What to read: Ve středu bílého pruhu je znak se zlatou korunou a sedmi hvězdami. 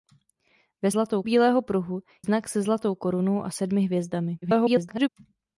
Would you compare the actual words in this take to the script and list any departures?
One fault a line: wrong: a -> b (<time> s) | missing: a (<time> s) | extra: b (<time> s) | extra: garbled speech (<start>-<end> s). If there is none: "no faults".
wrong: středu -> zlatou (0.9 s)
missing: je (2.0 s)
extra: garbled speech (4.4-5.1 s)